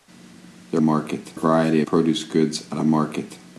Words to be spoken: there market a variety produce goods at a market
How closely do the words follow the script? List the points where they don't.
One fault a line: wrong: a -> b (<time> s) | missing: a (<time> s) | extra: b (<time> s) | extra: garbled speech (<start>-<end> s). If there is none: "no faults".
no faults